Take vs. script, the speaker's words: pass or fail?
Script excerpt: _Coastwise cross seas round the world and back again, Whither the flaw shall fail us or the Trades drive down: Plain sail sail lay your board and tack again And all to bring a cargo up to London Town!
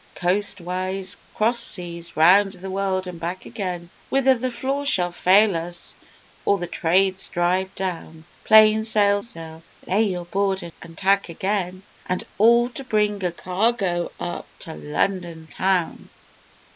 pass